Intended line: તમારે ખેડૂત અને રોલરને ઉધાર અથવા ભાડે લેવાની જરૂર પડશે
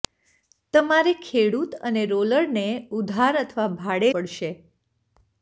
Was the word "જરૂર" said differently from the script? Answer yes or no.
yes